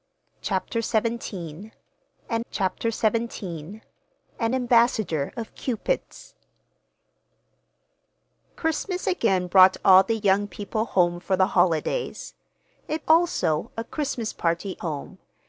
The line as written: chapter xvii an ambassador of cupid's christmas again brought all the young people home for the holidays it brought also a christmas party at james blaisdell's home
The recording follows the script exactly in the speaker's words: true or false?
false